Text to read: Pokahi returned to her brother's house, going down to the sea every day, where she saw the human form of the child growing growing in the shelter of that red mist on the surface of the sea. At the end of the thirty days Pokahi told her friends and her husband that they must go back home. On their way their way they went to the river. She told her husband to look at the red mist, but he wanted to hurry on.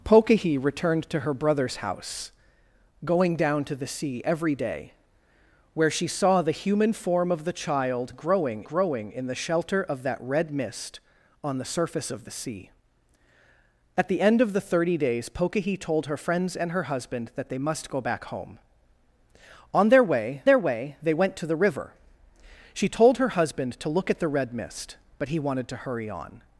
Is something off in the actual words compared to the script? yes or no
no